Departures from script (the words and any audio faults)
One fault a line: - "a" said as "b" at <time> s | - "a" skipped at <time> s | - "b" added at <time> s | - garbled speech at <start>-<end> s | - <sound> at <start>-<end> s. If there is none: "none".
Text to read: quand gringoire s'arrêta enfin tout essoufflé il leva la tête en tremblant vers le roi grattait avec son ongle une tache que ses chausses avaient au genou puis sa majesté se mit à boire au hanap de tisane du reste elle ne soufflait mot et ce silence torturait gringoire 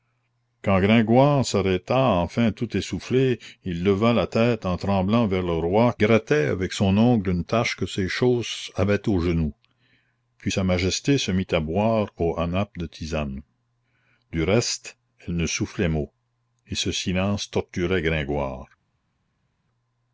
none